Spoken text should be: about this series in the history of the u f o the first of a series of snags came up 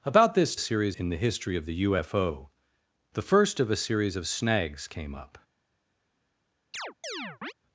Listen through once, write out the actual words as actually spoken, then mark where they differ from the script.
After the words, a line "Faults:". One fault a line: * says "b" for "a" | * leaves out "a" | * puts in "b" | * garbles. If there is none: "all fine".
about this series in the history of the u f o the first of a series of snags came up
Faults:
all fine